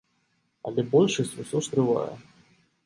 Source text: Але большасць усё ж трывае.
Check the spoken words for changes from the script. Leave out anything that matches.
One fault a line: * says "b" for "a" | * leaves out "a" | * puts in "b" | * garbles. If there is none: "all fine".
all fine